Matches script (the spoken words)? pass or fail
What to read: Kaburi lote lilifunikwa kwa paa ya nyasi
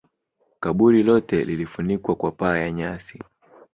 pass